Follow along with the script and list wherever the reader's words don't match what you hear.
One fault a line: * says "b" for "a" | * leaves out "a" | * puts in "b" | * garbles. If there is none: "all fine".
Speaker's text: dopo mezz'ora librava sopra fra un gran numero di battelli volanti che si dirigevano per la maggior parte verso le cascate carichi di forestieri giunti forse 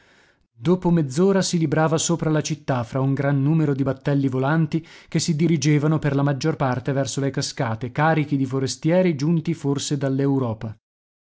* puts in "si"
* puts in "la città"